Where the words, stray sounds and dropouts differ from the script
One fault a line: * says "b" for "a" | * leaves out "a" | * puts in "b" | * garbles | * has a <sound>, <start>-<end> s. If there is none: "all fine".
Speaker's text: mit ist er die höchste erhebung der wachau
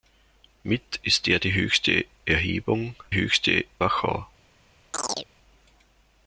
* says "höchste" for "der"
* has a chirp, 4.9-5.3 s